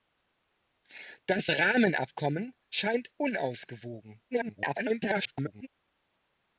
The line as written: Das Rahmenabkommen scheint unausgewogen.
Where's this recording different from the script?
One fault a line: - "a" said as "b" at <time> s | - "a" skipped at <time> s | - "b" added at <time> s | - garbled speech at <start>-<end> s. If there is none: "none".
- garbled speech at 4.3-5.7 s